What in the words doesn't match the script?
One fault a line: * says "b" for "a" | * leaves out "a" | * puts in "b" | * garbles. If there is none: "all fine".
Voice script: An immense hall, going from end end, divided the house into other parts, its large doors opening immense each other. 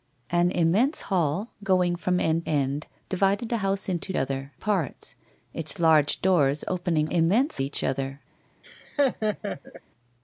all fine